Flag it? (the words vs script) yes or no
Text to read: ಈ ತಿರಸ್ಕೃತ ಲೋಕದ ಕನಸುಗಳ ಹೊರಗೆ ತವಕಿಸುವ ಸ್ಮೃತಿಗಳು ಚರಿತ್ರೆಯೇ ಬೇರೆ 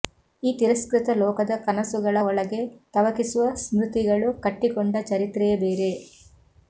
yes